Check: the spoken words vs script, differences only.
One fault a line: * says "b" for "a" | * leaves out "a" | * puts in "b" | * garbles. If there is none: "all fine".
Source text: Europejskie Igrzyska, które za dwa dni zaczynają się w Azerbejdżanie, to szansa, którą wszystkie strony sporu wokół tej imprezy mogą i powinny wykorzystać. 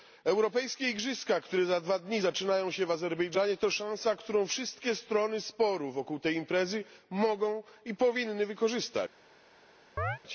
all fine